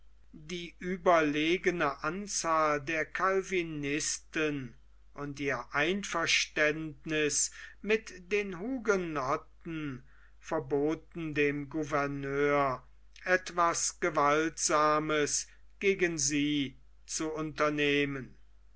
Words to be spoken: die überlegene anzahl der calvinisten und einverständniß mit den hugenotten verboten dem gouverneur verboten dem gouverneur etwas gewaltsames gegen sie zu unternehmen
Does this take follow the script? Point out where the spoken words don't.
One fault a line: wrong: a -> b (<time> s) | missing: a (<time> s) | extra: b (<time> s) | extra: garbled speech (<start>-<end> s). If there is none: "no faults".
extra: ihr (5.4 s)
missing: verboten dem gouverneur (12.8 s)